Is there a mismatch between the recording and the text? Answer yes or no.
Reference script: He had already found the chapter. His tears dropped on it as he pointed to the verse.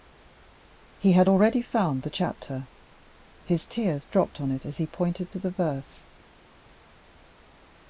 no